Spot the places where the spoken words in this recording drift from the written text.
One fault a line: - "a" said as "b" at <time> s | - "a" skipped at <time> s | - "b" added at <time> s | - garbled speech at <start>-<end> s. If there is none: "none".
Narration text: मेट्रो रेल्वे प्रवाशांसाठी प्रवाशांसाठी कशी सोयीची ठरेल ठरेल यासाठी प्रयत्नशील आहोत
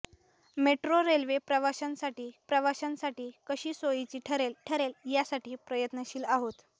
none